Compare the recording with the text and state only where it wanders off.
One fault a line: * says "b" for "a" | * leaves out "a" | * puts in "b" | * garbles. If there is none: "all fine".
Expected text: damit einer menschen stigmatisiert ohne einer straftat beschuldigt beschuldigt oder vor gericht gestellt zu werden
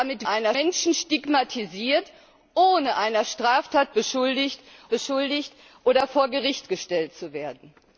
all fine